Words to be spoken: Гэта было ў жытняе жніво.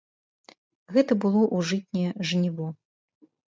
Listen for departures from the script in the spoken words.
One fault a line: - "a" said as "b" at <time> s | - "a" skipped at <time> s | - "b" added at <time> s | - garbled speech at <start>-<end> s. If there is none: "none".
none